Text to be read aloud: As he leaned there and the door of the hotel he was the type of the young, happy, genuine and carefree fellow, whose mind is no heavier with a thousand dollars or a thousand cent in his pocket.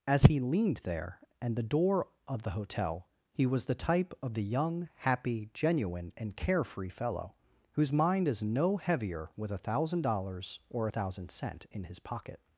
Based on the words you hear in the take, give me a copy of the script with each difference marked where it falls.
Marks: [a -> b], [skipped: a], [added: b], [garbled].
As he leaned there and the door of the hotel he was the type of the young, happy, genuine and carefree fellow, whose mind is no heavier with a thousand dollars or a thousand cent in his pocket.